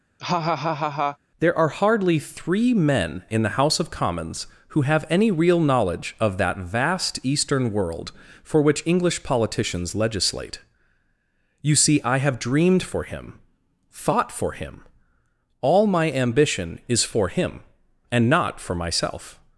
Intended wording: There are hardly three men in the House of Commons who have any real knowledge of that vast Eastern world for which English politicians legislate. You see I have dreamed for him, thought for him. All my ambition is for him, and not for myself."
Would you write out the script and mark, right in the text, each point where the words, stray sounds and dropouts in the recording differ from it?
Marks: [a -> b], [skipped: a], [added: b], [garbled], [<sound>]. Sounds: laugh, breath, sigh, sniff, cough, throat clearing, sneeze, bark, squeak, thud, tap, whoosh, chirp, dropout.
[laugh] There are hardly three men in the House of Commons who have any real knowledge of that vast Eastern world for which English politicians legislate. You see I have dreamed for him, thought for him. All my ambition is for him, and not for myself."